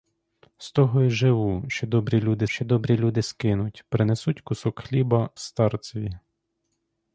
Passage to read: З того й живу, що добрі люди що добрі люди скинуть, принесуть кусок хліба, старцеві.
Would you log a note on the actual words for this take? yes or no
no